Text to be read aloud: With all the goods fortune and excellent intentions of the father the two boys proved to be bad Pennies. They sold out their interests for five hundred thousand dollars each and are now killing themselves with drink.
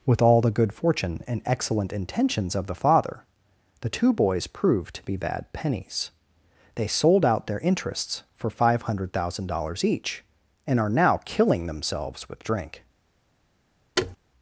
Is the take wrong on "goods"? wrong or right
wrong